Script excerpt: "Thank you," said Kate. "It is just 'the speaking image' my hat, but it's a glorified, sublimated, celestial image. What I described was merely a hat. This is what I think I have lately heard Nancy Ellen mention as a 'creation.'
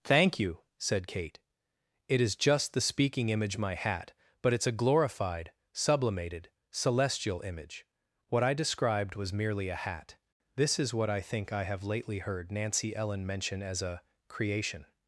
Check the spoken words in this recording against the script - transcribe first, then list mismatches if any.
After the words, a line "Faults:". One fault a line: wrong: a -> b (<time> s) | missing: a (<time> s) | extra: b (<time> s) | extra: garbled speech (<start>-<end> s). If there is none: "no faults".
"Thank you," said Kate. "It is just 'the speaking image' my hat, but it's a glorified, sublimated, celestial image. What I described was merely a hat. This is what I think I have lately heard Nancy Ellen mention as a 'creation.'
Faults:
no faults